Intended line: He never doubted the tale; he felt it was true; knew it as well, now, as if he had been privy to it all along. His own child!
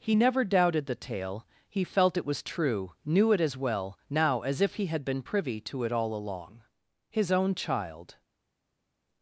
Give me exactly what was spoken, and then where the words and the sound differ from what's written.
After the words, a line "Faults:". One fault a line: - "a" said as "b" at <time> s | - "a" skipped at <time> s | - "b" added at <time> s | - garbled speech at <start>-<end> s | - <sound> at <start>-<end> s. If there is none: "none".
He never doubted the tale; he felt it was true; knew it as well, now, as if he had been privy to it all along. His own child!
Faults:
none